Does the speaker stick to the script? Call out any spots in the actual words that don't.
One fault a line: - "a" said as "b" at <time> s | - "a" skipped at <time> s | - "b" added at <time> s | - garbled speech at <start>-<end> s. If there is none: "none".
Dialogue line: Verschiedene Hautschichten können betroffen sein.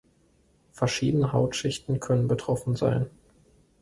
none